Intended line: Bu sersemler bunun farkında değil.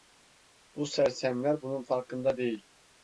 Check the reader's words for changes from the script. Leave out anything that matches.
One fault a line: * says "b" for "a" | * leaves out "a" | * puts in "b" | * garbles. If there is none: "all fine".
all fine